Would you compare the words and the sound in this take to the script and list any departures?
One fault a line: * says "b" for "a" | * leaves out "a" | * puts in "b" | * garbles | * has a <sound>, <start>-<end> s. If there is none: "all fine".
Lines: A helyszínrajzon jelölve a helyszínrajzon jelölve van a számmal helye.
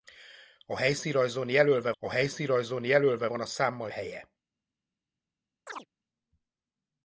* has a chirp, 5.7-5.9 s